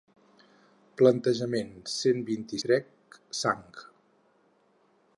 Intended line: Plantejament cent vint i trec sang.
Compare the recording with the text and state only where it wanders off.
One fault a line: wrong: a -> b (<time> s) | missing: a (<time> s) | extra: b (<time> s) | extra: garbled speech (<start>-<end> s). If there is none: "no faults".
no faults